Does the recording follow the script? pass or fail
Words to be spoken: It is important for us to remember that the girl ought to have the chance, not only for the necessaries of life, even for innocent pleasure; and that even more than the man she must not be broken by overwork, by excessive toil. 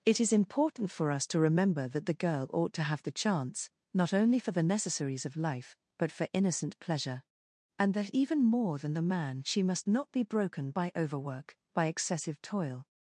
fail